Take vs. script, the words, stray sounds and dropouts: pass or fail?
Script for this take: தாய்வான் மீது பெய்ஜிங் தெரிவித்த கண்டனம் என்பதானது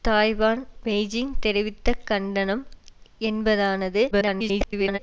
fail